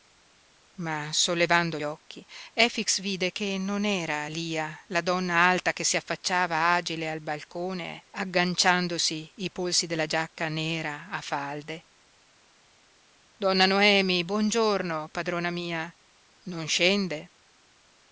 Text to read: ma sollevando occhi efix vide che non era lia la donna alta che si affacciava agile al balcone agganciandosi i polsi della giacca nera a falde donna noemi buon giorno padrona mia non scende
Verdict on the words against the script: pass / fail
pass